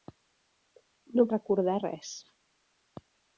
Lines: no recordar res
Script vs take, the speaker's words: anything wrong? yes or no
no